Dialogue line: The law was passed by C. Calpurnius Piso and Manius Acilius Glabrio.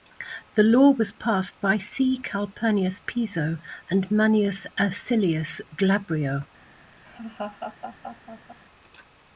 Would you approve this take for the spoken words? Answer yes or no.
yes